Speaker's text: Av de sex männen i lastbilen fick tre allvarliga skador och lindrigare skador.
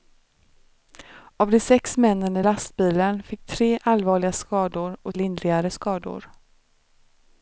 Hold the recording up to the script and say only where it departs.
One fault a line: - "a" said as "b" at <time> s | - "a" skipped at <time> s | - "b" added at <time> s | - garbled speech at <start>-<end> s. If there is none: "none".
none